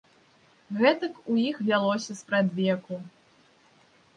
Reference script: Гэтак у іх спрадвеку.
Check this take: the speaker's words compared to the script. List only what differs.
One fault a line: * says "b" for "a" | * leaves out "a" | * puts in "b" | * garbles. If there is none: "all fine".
* puts in "вялося"